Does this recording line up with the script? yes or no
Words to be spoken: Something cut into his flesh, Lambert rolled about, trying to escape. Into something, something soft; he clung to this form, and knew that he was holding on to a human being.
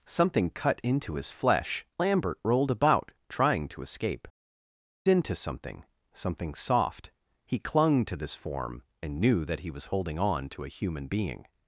yes